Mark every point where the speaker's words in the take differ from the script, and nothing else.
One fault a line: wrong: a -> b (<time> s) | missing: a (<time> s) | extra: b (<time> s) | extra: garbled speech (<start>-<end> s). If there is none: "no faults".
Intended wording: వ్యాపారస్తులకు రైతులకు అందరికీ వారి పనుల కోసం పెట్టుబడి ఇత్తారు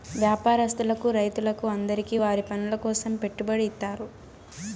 no faults